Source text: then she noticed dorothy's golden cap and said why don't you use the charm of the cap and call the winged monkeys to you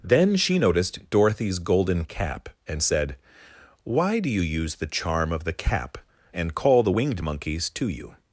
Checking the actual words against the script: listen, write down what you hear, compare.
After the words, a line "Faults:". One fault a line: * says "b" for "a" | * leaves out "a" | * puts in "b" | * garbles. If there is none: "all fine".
then she noticed dorothy's golden cap and said why do you use the charm of the cap and call the winged monkeys to you
Faults:
* says "do" for "don't"